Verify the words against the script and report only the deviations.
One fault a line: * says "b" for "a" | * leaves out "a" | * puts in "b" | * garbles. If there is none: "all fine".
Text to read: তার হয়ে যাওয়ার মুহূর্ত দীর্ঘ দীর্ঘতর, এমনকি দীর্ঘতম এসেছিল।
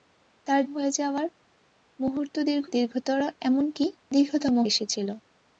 all fine